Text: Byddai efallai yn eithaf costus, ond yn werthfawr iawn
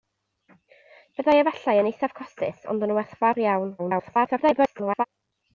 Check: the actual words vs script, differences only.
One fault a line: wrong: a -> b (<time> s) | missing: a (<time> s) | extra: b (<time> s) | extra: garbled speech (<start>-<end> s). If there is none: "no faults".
extra: garbled speech (3.8-5.0 s)